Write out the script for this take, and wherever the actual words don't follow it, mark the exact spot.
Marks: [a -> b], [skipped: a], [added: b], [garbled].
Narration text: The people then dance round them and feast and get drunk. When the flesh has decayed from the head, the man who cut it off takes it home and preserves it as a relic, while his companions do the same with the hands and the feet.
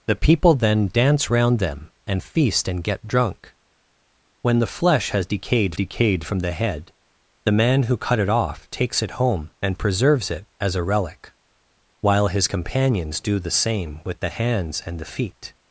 The people then dance round them and feast and get drunk. When the flesh has decayed [added: decayed] from the head, the man who cut it off takes it home and preserves it as a relic, while his companions do the same with the hands and the feet.